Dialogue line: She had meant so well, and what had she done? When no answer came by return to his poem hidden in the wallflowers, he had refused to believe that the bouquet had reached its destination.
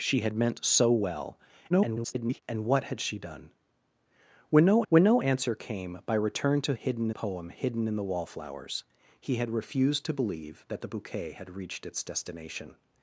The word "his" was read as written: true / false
false